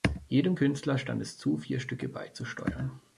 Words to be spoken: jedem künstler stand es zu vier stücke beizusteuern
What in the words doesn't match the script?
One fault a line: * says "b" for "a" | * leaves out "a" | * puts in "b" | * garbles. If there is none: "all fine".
all fine